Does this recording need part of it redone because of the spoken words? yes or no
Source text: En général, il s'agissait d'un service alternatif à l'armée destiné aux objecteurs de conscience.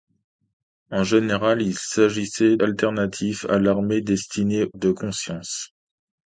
yes